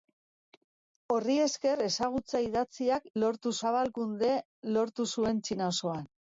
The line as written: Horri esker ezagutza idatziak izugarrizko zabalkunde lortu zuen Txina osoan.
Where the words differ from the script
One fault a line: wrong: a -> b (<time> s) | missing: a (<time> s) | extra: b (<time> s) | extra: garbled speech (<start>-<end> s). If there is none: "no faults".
wrong: izugarrizko -> lortu (3.2 s)